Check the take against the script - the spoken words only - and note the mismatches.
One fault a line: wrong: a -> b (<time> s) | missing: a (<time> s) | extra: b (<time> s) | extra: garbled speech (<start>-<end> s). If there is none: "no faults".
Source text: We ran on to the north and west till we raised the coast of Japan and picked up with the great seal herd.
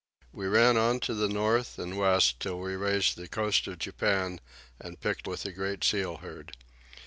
missing: up (5.3 s)